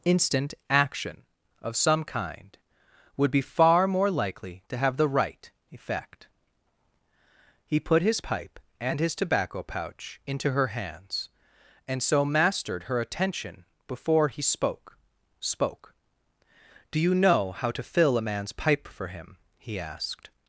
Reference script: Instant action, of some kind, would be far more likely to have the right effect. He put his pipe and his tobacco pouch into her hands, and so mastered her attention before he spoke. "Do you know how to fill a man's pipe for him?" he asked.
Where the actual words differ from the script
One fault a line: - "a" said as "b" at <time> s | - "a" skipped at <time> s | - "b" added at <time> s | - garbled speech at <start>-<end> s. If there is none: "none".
- "spoke" added at 15.4 s